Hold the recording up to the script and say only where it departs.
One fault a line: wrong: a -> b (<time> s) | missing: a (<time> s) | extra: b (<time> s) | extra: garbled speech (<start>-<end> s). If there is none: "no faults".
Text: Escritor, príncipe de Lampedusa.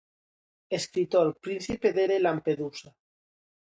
extra: de (2.1 s)